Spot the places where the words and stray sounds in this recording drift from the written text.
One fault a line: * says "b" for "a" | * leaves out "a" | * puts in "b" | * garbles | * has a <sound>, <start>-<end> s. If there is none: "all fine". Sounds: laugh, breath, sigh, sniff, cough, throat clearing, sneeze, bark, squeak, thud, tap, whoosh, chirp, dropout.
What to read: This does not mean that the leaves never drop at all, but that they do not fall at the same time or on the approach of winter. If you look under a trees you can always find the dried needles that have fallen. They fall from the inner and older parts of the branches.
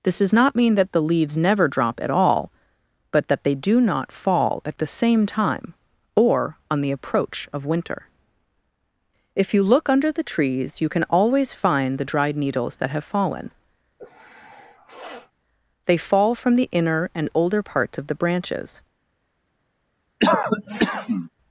* says "the" for "a"
* has a sniff, 14.0-15.3 s
* has a cough, 20.2-21.3 s